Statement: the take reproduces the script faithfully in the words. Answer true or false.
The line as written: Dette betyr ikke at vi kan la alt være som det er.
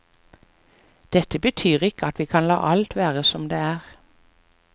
true